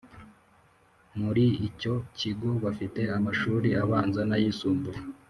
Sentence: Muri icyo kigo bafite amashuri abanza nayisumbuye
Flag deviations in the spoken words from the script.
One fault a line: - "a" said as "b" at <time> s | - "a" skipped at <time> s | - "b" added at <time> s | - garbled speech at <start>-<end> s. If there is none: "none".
none